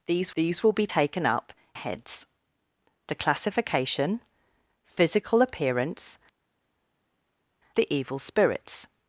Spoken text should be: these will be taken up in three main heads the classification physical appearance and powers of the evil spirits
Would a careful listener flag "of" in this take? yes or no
yes